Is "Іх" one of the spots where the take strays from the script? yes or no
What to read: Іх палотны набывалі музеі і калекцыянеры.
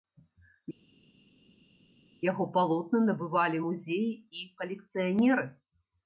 yes